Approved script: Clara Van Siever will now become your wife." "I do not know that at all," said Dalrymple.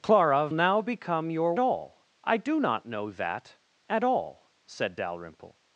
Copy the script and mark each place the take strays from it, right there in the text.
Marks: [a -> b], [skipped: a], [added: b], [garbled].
Clara [skipped: Van Siever will] now become your [wife." -> all] "I do not know that at all," said Dalrymple.